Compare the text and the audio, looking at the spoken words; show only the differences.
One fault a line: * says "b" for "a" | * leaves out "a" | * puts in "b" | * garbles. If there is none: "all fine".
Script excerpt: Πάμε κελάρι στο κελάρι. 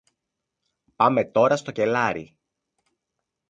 * says "τώρα" for "κελάρι"